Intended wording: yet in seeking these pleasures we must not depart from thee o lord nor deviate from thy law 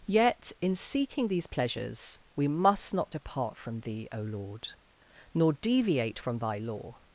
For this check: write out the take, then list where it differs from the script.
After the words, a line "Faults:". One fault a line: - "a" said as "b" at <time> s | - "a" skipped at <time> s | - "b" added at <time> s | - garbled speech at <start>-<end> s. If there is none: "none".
yet in seeking these pleasures we must not depart from thee o lord nor deviate from thy law
Faults:
none